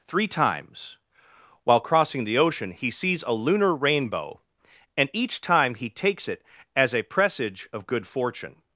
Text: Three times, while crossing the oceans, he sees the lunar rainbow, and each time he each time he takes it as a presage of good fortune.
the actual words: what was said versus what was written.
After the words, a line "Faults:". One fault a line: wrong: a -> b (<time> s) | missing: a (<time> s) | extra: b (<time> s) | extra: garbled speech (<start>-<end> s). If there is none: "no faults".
Three times, while crossing the ocean, he sees a lunar rainbow, and each time he takes it as a presage of good fortune.
Faults:
wrong: oceans -> ocean (2.4 s)
wrong: the -> a (3.2 s)
missing: each time he (5.9 s)